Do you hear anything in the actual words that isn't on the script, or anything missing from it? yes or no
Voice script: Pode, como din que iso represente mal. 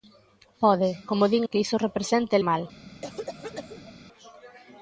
no